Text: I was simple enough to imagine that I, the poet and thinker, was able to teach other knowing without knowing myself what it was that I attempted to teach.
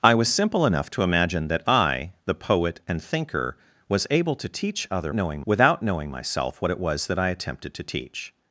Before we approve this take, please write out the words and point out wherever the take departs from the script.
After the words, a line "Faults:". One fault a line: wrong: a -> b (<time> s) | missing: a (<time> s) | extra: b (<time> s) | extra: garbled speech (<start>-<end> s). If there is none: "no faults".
I was simple enough to imagine that I, the poet and thinker, was able to teach other knowing without knowing myself what it was that I attempted to teach.
Faults:
no faults